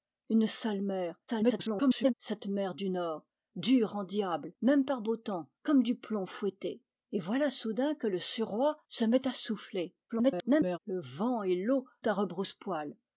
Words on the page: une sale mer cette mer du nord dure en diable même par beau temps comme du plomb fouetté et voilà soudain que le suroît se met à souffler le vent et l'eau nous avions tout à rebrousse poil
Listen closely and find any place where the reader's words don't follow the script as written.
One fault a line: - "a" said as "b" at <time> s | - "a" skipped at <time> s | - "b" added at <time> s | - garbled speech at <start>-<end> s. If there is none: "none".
- garbled speech at 1.3-2.1 s
- garbled speech at 10.1-10.8 s
- "nous avions tout" skipped at 11.8 s